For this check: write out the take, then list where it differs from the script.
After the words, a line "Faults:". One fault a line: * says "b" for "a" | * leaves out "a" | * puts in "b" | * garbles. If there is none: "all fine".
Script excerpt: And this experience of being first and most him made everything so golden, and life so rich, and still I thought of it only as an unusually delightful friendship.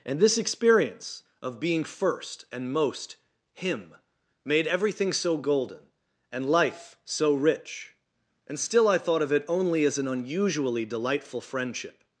And this experience of being first and most him made everything so golden, and life so rich, and still I thought of it only as an unusually delightful friendship.
Faults:
all fine